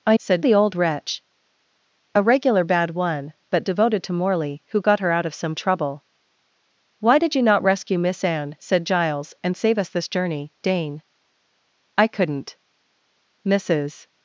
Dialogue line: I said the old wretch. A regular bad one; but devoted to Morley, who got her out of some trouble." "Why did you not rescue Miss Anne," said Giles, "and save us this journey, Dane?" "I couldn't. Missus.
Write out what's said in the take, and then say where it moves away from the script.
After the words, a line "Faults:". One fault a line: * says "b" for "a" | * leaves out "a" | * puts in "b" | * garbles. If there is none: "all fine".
I said the old wretch. A regular bad one; but devoted to Morley, who got her out of some trouble." "Why did you not rescue Miss Anne," said Giles, "and save us this journey, Dane?" "I couldn't. Missus.
Faults:
all fine